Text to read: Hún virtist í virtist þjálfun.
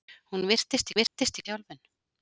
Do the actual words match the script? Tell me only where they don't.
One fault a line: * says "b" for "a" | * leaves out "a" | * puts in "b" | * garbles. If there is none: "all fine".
all fine